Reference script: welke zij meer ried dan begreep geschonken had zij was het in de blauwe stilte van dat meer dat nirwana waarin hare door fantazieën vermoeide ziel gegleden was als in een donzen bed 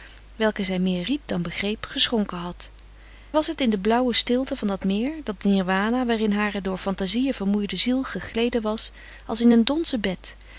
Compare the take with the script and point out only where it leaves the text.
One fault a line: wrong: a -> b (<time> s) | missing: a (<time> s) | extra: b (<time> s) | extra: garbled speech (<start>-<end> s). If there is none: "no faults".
missing: zij (2.7 s)